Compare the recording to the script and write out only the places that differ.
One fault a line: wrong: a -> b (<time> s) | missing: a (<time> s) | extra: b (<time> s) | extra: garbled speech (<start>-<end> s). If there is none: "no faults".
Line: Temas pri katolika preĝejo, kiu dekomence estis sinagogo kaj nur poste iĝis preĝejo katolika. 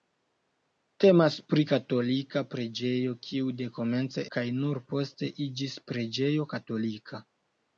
missing: estis sinagogo (4.2 s)